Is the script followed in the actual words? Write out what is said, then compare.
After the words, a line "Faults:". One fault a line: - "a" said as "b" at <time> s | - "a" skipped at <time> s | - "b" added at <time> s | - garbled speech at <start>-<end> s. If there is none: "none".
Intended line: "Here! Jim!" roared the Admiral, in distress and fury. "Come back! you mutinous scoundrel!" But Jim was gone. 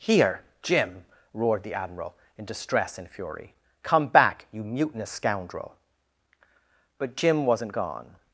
"Here! Jim!" roared the Admiral, in distress and fury. "Come back! you mutinous scoundrel!" But Jim wasn't gone.
Faults:
- "was" said as "wasn't" at 7.5 s